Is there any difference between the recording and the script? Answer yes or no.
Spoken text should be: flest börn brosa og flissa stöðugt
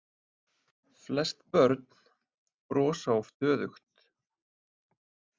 yes